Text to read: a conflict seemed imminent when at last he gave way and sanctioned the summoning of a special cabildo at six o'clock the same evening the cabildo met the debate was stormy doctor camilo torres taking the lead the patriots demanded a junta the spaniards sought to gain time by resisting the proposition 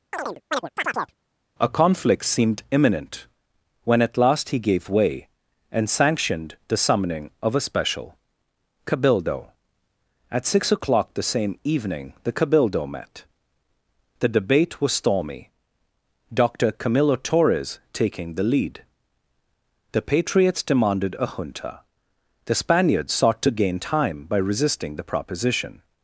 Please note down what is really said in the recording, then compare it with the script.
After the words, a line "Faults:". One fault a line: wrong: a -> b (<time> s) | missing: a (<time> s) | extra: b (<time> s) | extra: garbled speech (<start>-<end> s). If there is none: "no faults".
a conflict seemed imminent when at last he gave way and sanctioned the summoning of a special cabildo at six o'clock the same evening the cabildo met the debate was stormy doctor camilo torres taking the lead the patriots demanded a junta the spaniards sought to gain time by resisting the proposition
Faults:
no faults